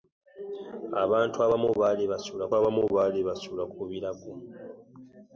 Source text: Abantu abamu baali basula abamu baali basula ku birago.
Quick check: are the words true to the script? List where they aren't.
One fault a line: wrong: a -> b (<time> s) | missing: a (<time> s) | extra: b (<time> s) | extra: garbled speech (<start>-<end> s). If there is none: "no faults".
no faults